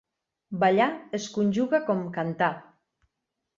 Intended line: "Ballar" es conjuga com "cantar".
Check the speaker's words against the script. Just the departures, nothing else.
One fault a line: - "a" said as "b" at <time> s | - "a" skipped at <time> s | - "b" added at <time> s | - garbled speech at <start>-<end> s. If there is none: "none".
none